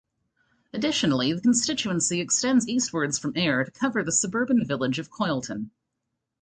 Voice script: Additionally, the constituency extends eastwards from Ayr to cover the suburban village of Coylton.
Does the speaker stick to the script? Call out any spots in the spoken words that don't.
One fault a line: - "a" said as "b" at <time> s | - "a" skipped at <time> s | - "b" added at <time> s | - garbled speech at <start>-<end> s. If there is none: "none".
none